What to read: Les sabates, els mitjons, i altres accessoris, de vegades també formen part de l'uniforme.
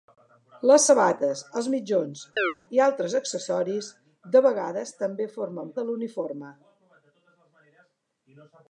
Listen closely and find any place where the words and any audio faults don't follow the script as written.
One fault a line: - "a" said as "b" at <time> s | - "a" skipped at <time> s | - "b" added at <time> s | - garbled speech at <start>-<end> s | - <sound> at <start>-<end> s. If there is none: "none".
- chirp at 2.4-2.5 s
- "part" skipped at 5.8 s